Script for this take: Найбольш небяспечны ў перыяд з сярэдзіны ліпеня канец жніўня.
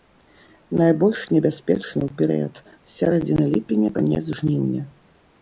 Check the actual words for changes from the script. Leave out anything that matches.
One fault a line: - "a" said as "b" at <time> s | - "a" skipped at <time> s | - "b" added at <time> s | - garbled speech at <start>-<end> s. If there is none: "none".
none